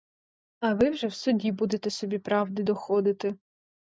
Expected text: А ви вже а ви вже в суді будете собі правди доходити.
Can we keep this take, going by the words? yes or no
no